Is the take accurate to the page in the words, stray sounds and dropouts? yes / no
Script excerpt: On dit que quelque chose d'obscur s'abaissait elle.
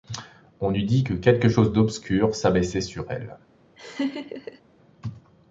no